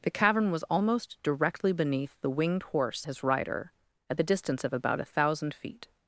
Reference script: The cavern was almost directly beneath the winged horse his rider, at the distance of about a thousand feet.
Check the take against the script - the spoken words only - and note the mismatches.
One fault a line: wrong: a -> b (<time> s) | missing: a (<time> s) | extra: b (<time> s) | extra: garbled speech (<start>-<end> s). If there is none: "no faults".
no faults